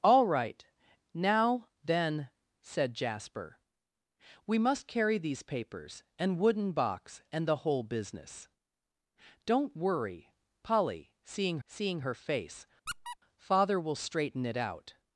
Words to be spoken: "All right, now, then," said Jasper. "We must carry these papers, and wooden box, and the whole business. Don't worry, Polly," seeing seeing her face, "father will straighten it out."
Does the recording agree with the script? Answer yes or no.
yes